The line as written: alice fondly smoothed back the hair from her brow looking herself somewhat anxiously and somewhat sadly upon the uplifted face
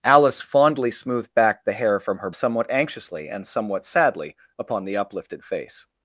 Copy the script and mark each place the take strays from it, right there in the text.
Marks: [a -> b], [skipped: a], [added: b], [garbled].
alice fondly smoothed back the hair from her [skipped: brow looking herself] somewhat anxiously and somewhat sadly upon the uplifted face